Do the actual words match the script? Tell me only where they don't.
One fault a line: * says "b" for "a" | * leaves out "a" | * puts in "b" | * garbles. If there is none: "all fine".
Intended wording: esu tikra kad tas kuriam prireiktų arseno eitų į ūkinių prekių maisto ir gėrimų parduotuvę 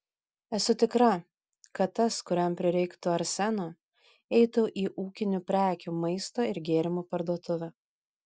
all fine